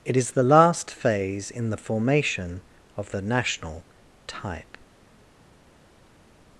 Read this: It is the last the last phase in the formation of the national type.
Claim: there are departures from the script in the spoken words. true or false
true